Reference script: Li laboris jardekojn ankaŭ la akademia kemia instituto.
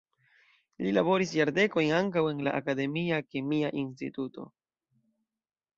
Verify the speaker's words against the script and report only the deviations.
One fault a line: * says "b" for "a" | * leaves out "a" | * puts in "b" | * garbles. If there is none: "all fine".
* puts in "en"